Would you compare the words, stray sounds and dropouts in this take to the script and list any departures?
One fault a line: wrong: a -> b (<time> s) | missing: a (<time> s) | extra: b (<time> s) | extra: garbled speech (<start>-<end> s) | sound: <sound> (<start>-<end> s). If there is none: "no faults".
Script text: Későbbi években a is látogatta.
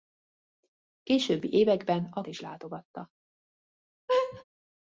sound: laugh (4.1-4.4 s)